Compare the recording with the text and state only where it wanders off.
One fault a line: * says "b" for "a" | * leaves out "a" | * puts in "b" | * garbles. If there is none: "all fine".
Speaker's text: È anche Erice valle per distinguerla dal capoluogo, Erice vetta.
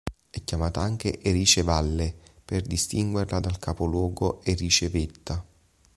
* puts in "chiamata"